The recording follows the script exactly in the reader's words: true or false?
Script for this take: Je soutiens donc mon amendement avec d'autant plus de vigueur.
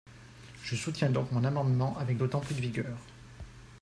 true